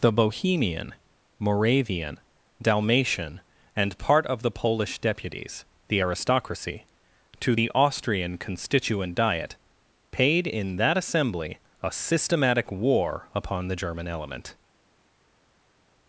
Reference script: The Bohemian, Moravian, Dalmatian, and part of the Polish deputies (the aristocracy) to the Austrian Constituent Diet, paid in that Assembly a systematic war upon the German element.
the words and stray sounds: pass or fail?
pass